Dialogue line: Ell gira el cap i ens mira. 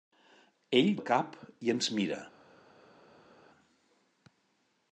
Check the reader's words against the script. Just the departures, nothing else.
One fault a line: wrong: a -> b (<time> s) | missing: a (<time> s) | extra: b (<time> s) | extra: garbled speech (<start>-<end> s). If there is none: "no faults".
missing: gira (0.9 s)